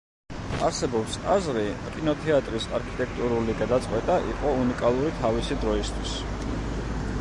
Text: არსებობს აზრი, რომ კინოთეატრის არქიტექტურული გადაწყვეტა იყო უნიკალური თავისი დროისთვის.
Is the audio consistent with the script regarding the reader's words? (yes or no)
no